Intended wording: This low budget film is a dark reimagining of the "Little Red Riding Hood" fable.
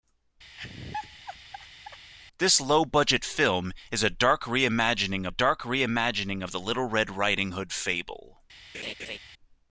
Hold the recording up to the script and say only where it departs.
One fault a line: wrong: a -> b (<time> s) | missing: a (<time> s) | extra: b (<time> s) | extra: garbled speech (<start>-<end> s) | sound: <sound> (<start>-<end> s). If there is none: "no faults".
sound: laugh (0.5-2.1 s)
extra: dark reimagining (5.3 s)
sound: laugh (8.7-9.2 s)